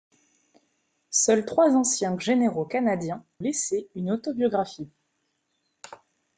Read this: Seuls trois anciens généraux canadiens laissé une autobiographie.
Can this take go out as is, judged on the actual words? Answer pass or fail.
pass